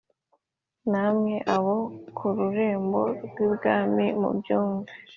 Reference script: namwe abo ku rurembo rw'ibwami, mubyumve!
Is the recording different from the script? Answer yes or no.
no